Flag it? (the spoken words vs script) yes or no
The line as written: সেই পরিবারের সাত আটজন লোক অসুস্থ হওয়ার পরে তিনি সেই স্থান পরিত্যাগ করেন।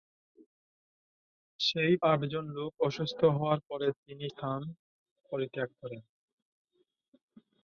yes